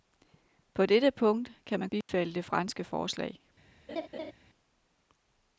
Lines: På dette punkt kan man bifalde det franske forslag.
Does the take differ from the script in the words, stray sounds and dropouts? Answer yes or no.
yes